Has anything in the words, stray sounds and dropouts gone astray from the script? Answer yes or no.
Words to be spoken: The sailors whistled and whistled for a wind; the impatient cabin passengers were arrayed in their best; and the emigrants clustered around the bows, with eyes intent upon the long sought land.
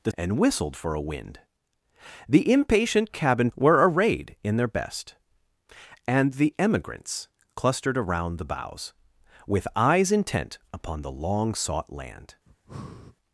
yes